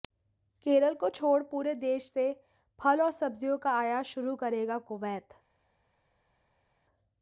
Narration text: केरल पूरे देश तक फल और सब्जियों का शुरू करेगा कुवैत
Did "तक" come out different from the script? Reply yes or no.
yes